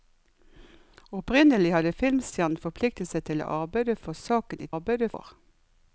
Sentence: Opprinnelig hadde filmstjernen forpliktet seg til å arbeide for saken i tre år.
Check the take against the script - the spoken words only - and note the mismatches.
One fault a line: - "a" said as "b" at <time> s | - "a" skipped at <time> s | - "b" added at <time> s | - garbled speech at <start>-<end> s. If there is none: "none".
- "tre" said as "arbeide" at 4.7 s